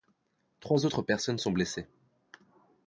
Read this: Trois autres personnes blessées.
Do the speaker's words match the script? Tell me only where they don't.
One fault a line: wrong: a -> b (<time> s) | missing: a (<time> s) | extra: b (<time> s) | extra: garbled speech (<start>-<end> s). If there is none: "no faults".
extra: sont (1.4 s)